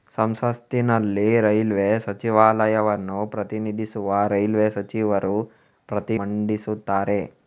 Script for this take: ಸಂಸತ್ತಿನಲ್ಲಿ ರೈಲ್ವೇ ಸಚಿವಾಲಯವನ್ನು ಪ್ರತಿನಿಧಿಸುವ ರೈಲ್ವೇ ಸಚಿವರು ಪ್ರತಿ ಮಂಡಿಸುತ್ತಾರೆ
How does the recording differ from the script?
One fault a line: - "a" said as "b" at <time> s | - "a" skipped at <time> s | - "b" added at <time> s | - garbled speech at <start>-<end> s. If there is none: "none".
none